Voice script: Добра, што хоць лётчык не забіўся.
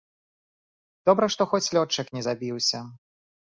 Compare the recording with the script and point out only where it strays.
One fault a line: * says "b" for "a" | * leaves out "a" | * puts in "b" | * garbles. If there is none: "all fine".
all fine